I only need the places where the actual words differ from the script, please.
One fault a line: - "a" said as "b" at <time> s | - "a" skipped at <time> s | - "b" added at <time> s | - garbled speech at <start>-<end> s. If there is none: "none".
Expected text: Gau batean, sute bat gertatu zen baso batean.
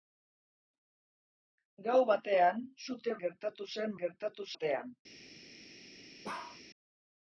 - "bat" skipped at 3.2 s
- "baso" said as "gertatu" at 4.1 s